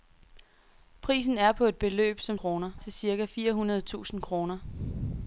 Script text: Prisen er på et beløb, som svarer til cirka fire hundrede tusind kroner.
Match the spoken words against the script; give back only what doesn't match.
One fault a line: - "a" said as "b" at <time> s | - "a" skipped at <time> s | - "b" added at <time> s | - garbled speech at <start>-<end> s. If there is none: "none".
- "svarer" said as "kroner" at 2.3 s